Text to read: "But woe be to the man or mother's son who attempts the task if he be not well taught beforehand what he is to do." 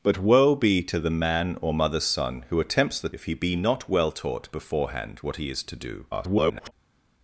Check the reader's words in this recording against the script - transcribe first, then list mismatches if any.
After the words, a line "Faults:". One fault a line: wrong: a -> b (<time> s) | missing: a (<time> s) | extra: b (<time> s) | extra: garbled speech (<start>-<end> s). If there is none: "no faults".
"But woe be to the man or mother's son who attempts the if he be not well taught beforehand what he is to do." [garbled]
Faults:
missing: task (3.1 s)
extra: garbled speech (6.1-6.7 s)